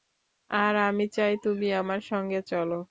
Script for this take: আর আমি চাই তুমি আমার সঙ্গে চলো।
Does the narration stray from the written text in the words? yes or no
no